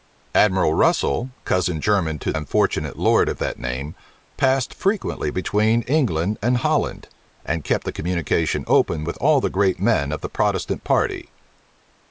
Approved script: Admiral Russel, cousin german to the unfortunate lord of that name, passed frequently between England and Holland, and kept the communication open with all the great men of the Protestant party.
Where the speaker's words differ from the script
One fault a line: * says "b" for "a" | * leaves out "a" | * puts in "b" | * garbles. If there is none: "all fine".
* leaves out "the"